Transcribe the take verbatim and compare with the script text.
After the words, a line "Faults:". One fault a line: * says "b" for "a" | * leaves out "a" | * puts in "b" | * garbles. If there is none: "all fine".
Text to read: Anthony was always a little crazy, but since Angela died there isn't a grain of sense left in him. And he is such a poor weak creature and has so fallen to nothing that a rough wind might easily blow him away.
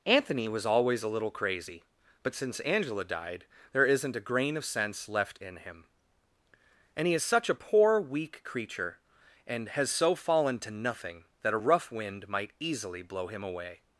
Anthony was always a little crazy, but since Angela died there isn't a grain of sense left in him. And he is such a poor weak creature and has so fallen to nothing that a rough wind might easily blow him away.
Faults:
all fine